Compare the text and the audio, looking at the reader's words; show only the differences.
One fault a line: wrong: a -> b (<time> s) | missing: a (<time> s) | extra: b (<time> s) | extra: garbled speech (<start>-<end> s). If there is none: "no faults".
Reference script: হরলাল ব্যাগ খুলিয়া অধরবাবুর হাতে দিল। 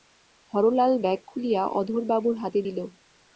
no faults